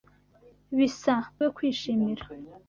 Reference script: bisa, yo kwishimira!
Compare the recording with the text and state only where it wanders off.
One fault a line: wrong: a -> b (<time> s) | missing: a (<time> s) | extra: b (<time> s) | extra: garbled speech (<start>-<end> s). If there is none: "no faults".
no faults